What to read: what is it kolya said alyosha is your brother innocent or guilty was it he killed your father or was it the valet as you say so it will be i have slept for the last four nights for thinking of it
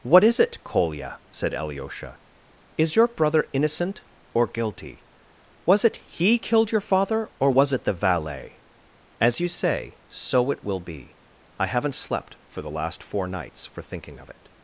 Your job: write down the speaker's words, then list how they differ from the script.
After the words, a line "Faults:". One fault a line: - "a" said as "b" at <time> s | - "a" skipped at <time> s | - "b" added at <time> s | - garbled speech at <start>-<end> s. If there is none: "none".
what is it kolya said alyosha is your brother innocent or guilty was it he killed your father or was it the valet as you say so it will be i haven't slept for the last four nights for thinking of it
Faults:
- "have" said as "haven't" at 11.7 s